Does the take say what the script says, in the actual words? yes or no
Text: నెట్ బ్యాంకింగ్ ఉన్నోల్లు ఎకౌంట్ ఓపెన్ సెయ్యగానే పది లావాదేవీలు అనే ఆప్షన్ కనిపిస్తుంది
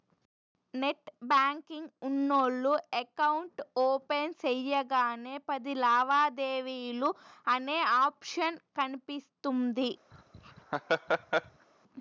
yes